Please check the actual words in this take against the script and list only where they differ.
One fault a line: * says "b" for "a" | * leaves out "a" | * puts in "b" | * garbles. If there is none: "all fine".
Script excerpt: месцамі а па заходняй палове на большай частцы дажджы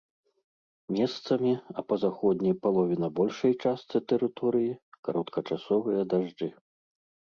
* puts in "тэрыторыі кароткачасовыя"